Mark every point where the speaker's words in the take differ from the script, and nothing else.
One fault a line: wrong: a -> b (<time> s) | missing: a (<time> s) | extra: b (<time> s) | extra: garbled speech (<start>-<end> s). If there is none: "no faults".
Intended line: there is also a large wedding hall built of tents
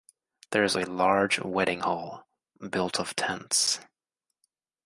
missing: also (0.8 s)